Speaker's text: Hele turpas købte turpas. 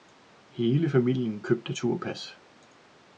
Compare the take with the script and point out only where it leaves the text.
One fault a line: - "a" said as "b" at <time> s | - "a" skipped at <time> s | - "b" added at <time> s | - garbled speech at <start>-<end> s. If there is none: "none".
- "turpas" said as "familien" at 0.9 s